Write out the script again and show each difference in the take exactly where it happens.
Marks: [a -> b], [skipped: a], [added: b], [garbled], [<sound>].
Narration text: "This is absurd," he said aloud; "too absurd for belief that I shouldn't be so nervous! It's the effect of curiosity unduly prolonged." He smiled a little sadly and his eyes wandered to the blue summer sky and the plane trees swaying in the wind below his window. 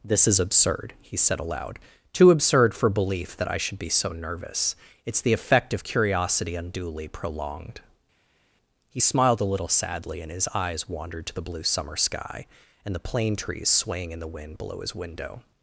"This is absurd," he said aloud; "too absurd for belief that I [shouldn't -> should] be so nervous! It's the effect of curiosity unduly prolonged." He smiled a little sadly and his eyes wandered to the blue summer sky and the plane trees swaying in the wind below his window.